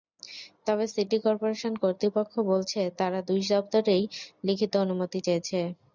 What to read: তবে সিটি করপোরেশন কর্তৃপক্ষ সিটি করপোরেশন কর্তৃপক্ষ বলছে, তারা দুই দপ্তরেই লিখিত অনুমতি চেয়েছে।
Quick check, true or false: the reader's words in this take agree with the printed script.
false